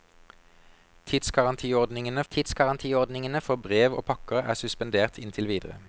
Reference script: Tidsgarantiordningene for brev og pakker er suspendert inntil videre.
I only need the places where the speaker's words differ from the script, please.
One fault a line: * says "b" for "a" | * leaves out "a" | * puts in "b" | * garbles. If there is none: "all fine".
* puts in "tidsgarantiordningene"